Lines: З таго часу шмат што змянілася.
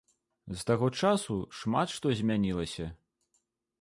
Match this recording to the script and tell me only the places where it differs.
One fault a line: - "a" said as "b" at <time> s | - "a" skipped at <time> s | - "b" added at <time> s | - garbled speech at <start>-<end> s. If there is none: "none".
none